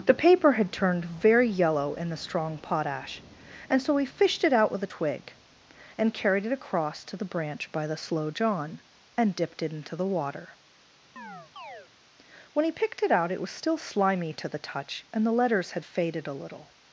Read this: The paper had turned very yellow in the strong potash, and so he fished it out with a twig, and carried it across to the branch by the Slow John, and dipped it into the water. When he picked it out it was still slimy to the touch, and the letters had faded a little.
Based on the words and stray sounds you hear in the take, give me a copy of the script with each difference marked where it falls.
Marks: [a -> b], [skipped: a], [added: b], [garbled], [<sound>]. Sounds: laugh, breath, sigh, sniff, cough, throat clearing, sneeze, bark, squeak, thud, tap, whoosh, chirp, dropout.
The paper had turned very yellow in the strong potash, and so he fished it out with a twig, and carried it across to the branch by the Slow John, and dipped it into the water. [chirp] When he picked it out it was still slimy to the touch, and the letters had faded a little.